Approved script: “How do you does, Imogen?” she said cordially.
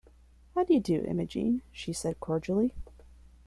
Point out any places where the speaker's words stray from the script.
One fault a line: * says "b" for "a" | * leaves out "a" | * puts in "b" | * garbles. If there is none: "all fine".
* says "do" for "does"